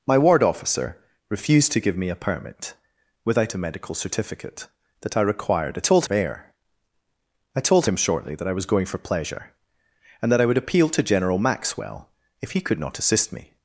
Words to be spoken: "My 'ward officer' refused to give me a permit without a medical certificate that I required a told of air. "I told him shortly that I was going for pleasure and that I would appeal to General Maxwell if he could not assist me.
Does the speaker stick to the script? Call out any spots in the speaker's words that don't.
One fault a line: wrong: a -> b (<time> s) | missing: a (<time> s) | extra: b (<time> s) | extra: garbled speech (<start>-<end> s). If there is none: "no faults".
no faults